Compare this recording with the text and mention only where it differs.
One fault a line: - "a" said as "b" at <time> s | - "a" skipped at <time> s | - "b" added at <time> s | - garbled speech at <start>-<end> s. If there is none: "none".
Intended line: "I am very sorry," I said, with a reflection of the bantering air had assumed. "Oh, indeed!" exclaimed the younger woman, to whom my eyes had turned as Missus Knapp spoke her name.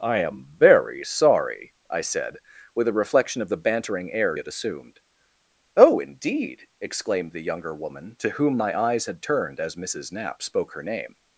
none